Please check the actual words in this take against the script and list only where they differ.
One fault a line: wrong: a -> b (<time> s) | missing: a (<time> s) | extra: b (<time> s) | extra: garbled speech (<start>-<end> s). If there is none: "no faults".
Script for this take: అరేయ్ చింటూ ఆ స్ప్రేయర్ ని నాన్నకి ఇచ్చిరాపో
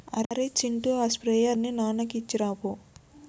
no faults